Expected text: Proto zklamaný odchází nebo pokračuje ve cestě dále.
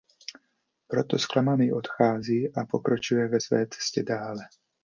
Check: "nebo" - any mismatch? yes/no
yes